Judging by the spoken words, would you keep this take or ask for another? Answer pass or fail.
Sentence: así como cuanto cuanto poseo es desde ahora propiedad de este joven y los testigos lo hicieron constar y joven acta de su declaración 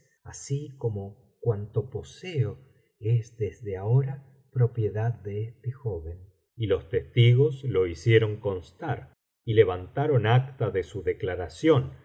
fail